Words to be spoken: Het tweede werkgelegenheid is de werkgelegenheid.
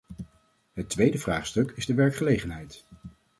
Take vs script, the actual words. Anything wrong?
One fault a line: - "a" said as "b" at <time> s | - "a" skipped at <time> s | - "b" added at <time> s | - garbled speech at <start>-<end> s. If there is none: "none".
- "werkgelegenheid" said as "vraagstuk" at 1.2 s